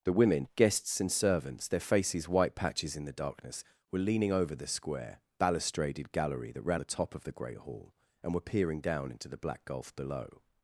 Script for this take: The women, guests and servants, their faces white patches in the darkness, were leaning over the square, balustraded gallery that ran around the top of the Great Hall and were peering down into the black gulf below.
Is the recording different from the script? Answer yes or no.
yes